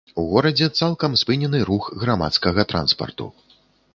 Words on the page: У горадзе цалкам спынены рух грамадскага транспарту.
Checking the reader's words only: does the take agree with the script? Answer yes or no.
yes